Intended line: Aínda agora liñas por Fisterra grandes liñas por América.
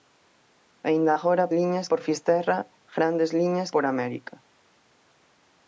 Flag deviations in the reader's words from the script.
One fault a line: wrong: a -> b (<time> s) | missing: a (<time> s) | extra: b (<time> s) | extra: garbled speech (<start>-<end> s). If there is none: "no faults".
no faults